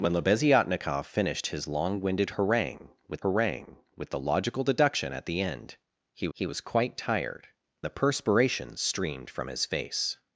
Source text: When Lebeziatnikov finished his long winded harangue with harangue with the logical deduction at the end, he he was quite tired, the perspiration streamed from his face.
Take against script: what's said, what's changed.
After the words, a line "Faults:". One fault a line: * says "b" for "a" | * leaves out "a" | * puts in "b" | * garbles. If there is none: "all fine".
When Lebeziatnikov finished his long winded harangue with harangue with the logical deduction at the end, he he was quite tired, the perspiration streamed from his face.
Faults:
all fine